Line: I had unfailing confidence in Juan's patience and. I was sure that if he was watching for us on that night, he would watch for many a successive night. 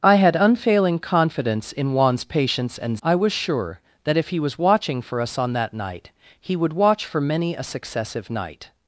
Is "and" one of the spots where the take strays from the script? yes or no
no